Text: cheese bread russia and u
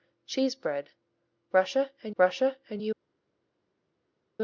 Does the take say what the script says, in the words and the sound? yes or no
no